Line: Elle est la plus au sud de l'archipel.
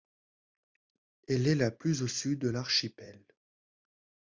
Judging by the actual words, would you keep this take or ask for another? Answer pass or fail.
pass